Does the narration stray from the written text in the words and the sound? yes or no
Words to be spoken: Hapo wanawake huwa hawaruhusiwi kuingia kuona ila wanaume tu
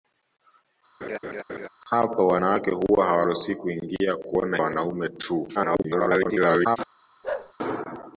yes